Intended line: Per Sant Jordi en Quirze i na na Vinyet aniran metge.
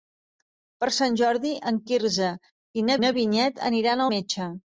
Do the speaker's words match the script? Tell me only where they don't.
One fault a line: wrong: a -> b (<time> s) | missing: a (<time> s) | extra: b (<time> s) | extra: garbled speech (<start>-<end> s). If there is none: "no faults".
no faults